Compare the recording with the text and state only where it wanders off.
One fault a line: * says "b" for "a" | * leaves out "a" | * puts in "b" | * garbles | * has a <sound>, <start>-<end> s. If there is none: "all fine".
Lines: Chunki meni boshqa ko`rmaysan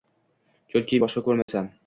* leaves out "meni"
* has a dropout, 1.4-1.5 s